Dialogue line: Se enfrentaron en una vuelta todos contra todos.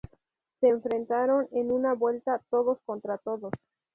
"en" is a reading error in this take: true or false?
false